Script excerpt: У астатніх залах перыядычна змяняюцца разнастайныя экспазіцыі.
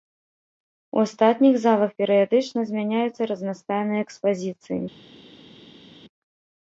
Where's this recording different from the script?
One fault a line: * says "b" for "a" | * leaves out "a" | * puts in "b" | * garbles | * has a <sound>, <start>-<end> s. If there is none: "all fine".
all fine